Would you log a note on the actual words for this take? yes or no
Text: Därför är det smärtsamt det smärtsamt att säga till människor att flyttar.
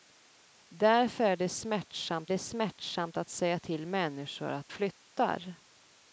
no